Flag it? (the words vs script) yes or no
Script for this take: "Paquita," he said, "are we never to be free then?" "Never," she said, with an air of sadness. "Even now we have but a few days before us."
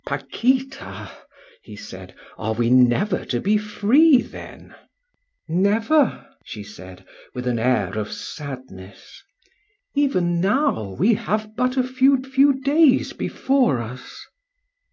yes